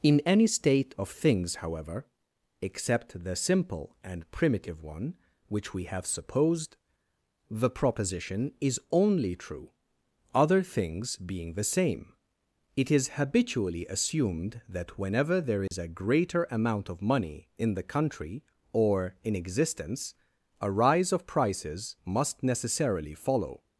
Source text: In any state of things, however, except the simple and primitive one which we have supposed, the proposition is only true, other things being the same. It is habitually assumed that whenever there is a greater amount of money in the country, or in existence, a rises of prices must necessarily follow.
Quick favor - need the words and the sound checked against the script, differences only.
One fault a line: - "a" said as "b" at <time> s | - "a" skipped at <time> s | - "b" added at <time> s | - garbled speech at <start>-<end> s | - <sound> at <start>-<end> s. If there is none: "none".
- dropout at 15.7-15.7 s
- "rises" said as "rise" at 20.7 s